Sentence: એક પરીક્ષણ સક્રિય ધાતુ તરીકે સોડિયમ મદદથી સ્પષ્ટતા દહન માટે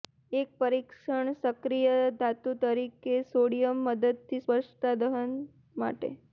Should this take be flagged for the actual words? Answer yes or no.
no